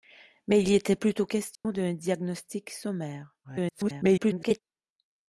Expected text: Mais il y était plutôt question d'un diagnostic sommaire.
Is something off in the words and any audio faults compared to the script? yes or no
yes